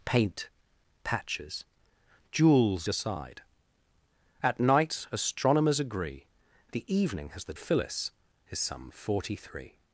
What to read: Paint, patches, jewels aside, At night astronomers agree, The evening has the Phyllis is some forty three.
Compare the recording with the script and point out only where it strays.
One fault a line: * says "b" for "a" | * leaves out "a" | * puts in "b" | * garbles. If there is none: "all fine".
all fine